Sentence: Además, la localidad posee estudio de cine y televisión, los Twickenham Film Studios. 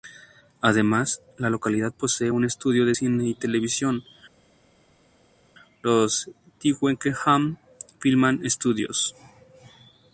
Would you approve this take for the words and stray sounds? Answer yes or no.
no